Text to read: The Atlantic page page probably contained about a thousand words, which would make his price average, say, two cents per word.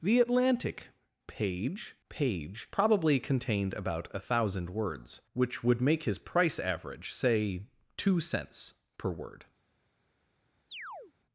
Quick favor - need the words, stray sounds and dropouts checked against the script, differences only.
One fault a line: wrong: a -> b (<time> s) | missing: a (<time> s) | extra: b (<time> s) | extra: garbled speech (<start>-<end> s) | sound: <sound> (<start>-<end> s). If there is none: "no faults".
sound: chirp (10.7-11.1 s)